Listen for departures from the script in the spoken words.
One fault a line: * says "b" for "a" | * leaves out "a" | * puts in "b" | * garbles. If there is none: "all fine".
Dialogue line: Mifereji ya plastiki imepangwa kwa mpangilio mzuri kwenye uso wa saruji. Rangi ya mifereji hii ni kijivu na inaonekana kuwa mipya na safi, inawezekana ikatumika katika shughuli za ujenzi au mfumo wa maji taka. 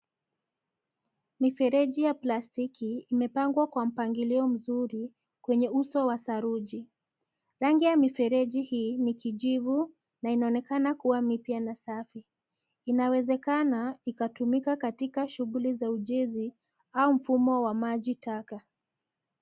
all fine